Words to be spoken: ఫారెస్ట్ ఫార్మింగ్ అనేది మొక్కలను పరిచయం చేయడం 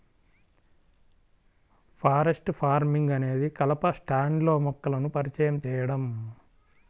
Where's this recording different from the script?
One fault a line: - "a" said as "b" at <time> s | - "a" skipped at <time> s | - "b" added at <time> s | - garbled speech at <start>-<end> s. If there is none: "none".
- "కలప స్టాండ్లో" added at 3.6 s